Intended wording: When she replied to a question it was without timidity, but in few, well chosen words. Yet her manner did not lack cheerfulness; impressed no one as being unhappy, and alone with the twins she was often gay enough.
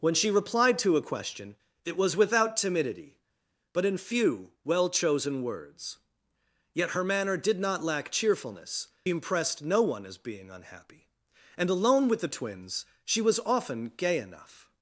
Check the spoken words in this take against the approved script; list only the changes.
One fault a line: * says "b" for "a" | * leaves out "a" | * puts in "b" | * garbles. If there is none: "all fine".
all fine